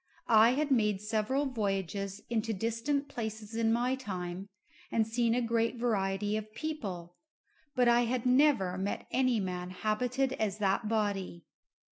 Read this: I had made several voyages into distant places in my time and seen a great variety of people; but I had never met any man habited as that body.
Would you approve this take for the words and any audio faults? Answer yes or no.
yes